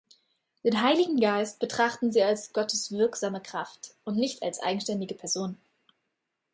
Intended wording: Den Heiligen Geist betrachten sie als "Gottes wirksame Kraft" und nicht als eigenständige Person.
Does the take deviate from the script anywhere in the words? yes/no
no